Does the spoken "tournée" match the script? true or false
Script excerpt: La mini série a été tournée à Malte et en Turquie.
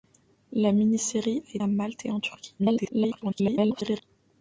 false